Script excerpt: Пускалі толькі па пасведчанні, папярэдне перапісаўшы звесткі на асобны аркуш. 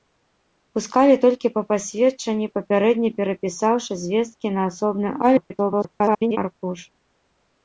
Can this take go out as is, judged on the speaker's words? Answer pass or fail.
fail